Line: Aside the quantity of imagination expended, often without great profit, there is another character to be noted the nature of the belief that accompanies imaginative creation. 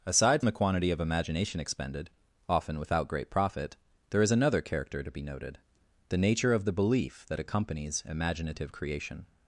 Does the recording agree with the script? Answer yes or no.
yes